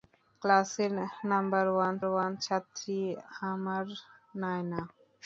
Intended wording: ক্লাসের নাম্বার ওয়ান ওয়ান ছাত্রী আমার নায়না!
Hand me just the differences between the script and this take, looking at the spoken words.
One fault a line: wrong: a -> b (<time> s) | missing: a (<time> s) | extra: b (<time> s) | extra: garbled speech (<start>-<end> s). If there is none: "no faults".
no faults